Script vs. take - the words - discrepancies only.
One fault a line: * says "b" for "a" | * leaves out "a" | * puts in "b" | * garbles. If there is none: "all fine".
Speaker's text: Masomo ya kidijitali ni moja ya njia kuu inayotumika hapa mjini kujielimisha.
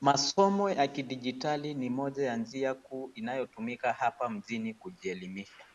all fine